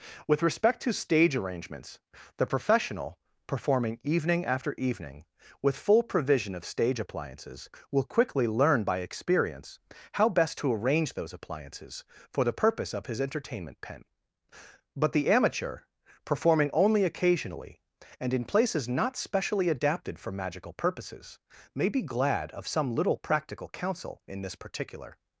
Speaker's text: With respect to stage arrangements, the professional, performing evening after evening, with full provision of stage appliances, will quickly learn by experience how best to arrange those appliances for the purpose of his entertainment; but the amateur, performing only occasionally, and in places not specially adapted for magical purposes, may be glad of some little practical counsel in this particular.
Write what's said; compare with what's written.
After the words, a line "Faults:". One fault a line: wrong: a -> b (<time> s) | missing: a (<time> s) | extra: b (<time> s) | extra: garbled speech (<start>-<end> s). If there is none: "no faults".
With respect to stage arrangements, the professional, performing evening after evening, with full provision of stage appliances, will quickly learn by experience how best to arrange those appliances for the purpose of his entertainment; pen but the amateur, performing only occasionally, and in places not specially adapted for magical purposes, may be glad of some little practical counsel in this particular.
Faults:
extra: pen (13.8 s)